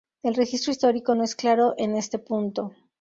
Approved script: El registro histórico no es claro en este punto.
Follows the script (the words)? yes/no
yes